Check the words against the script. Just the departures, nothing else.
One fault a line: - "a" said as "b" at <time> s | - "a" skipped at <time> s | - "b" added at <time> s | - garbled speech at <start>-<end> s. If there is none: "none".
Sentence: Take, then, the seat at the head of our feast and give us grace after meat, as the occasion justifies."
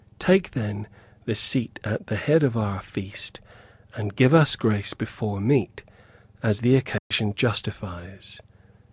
- "after" said as "before" at 4.9 s